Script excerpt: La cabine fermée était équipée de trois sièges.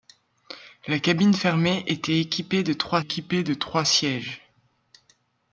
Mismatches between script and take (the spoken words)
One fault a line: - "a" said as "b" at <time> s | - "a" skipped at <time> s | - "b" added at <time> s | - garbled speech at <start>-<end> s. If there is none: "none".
- "équipée de trois" added at 3.0 s